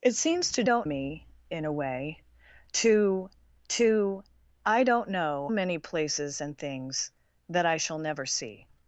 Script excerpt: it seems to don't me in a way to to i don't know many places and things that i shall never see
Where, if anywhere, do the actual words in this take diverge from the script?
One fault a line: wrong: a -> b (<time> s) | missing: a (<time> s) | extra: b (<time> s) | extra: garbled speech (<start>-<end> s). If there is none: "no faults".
no faults